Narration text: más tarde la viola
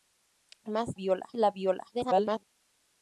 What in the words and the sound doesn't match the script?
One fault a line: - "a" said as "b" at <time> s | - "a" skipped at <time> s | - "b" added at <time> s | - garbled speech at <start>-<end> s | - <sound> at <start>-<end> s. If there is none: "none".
- "tarde" said as "viola" at 0.9 s
- garbled speech at 1.9-2.4 s